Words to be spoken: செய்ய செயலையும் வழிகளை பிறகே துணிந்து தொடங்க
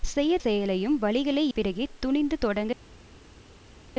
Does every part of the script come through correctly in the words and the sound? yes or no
yes